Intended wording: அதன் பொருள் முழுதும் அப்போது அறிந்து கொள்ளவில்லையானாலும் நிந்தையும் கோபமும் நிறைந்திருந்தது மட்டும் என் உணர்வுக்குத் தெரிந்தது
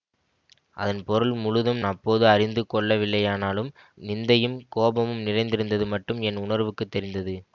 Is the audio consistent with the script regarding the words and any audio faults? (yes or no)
yes